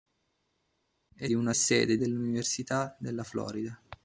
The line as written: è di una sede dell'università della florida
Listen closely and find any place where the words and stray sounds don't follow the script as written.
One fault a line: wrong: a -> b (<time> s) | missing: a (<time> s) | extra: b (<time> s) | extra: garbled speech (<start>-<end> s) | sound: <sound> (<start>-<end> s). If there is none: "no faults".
no faults